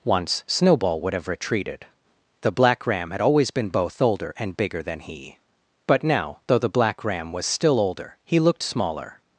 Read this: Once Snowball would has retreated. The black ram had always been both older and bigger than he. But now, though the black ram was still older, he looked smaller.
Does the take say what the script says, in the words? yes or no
no